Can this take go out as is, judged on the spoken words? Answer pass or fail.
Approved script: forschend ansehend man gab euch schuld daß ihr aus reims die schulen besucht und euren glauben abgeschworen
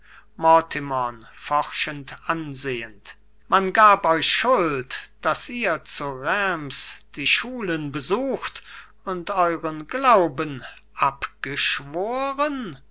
fail